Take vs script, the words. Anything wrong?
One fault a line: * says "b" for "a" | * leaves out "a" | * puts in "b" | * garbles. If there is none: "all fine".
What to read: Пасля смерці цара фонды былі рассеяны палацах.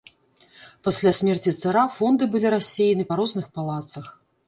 * puts in "па розных"